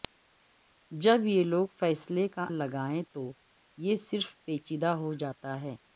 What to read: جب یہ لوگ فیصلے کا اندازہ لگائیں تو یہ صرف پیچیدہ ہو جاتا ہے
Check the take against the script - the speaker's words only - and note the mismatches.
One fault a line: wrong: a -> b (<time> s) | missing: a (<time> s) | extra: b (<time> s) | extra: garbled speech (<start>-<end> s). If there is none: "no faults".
missing: اندازہ (2.5 s)